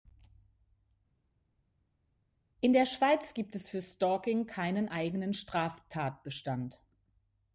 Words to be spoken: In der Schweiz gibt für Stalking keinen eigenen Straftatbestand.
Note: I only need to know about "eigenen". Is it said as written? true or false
true